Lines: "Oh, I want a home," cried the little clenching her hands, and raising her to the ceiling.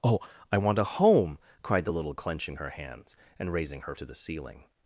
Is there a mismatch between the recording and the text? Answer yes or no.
no